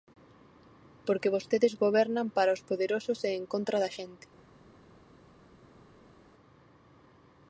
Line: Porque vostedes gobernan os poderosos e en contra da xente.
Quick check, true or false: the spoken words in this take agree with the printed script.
false